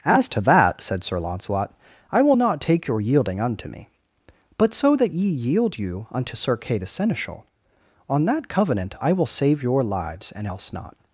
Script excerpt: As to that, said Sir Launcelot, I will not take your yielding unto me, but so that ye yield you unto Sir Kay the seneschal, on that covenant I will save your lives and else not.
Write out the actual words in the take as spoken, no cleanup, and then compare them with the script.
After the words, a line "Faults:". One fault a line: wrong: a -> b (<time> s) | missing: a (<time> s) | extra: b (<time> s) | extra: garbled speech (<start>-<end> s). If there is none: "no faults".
As to that, said Sir Launcelot, I will not take your yielding unto me, but so that ye yield you unto Sir Kay the seneschal, on that covenant I will save your lives and else not.
Faults:
no faults